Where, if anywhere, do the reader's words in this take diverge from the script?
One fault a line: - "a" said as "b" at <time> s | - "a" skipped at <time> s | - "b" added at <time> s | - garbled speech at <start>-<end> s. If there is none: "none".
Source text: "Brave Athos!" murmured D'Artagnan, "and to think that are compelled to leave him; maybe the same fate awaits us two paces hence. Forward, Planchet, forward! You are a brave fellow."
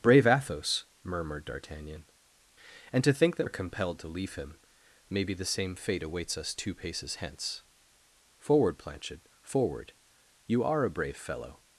none